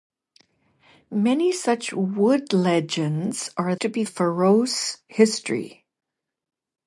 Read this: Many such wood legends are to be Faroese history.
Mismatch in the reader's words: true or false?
false